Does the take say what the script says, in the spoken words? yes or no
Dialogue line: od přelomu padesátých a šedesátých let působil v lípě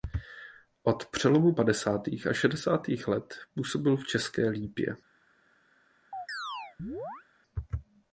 no